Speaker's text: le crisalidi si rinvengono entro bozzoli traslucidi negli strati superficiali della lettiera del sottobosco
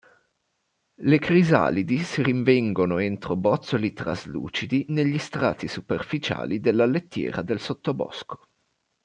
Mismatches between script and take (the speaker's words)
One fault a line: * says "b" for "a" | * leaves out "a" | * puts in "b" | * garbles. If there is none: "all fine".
all fine